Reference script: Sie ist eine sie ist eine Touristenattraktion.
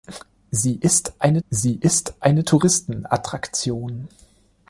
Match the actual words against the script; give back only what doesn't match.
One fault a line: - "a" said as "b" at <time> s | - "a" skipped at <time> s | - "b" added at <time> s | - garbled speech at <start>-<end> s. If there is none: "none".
none